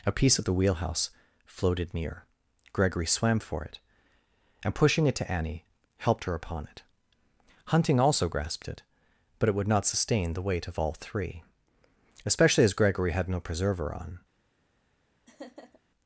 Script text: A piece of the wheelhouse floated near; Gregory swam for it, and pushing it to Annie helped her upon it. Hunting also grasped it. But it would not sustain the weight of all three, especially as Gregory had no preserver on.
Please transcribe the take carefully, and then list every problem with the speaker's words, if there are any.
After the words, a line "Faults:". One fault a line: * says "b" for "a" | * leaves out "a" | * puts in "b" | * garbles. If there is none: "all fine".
A piece of the wheelhouse floated near; Gregory swam for it, and pushing it to Annie helped her upon it. Hunting also grasped it. But it would not sustain the weight of all three, especially as Gregory had no preserver on.
Faults:
all fine